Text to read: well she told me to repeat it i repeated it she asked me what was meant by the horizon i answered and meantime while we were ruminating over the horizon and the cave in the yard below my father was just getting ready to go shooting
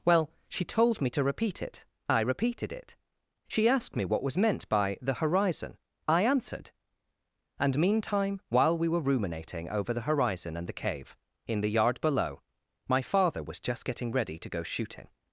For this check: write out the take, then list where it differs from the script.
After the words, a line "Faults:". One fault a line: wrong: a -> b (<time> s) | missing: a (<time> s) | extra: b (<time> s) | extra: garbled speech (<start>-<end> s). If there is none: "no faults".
well she told me to repeat it i repeated it she asked me what was meant by the horizon i answered and meantime while we were ruminating over the horizon and the cave in the yard below my father was just getting ready to go shooting
Faults:
no faults